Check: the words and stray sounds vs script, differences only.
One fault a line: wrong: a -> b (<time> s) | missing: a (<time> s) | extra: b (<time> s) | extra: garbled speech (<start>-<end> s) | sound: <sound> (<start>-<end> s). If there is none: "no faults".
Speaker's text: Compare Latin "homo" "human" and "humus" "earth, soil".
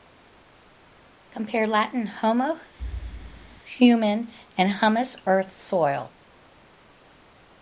sound: thud (2.8-3.6 s)